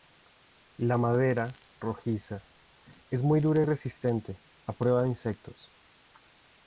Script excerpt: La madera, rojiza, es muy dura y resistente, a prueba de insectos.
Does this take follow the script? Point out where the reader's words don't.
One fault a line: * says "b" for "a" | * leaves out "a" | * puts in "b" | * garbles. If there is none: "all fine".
all fine